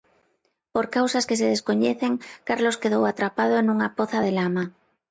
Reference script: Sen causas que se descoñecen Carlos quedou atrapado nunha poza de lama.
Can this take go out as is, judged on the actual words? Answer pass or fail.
fail